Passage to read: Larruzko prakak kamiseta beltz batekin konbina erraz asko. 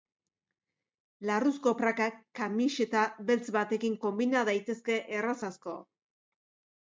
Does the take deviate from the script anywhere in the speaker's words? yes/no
yes